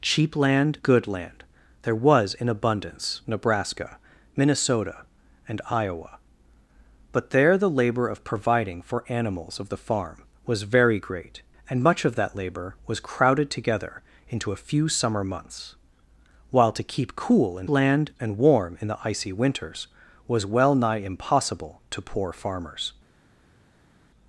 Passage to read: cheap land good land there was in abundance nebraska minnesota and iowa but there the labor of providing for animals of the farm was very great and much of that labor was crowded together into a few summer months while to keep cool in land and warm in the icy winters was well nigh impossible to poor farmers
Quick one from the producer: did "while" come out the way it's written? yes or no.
yes